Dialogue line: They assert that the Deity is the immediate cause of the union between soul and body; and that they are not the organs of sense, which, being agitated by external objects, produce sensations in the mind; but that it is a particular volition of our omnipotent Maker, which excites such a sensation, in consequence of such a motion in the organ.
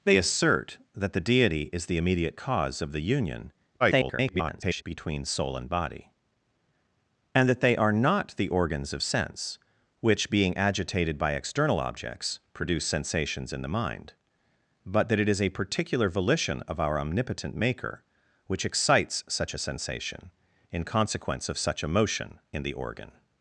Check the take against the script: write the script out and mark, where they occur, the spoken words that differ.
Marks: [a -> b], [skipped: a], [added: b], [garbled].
They assert that the Deity is the immediate cause of the union [garbled] between soul and body; and that they are not the organs of sense, which, being agitated by external objects, produce sensations in the mind; but that it is a particular volition of our omnipotent Maker, which excites such a sensation, in consequence of such a motion in the organ.